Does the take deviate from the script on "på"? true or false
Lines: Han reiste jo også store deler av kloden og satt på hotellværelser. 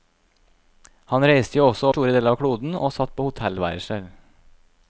false